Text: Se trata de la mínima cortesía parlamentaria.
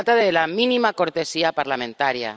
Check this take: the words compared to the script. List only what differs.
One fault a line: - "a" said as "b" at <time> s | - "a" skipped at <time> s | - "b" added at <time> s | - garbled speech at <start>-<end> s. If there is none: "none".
none